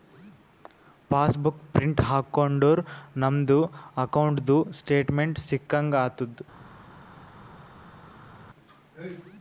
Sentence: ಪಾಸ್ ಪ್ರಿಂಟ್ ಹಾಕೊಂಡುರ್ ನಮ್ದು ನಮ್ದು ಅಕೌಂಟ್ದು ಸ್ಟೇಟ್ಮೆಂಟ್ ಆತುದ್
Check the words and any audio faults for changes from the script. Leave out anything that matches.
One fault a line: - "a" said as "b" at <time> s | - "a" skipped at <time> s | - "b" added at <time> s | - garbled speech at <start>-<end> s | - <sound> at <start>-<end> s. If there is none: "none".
- "ಬುಕ್" added at 1.4 s
- "ನಮ್ದು" skipped at 3.6 s
- "ಸಿಕ್ಕಂಗ್" added at 5.5 s